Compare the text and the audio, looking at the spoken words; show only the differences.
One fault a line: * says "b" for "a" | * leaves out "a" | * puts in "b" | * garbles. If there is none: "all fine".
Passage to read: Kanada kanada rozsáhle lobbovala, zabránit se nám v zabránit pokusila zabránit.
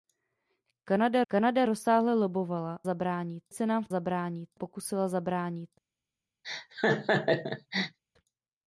all fine